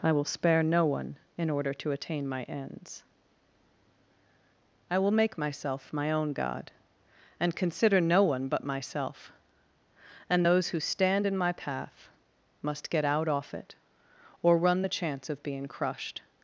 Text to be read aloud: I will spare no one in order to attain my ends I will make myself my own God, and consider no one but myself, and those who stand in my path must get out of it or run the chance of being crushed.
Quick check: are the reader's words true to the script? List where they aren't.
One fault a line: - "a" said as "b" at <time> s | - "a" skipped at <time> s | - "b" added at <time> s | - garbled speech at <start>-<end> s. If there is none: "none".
- "of" said as "off" at 13.3 s